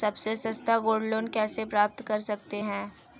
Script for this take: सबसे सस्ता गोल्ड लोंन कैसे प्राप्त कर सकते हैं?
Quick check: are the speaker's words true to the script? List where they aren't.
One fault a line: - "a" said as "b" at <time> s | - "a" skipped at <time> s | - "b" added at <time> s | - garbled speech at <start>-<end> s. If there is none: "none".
none